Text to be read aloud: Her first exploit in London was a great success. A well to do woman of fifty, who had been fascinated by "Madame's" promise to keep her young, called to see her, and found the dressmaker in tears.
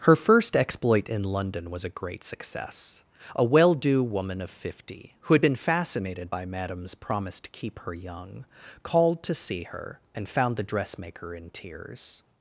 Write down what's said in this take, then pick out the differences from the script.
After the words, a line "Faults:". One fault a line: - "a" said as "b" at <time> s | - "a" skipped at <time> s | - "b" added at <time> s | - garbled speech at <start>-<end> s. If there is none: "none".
Her first exploit in London was a great success. A well do woman of fifty, who had been fascinated by "Madame's" promise to keep her young, called to see her, and found the dressmaker in tears.
Faults:
- "to" skipped at 3.8 s